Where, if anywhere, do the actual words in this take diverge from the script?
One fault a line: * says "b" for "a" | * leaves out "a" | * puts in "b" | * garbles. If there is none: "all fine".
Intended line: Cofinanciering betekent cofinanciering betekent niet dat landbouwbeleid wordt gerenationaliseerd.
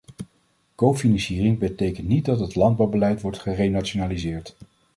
* leaves out "cofinanciering betekent"
* puts in "het"